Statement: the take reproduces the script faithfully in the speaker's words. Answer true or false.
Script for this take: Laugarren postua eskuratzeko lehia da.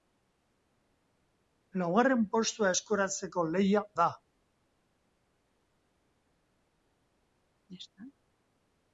true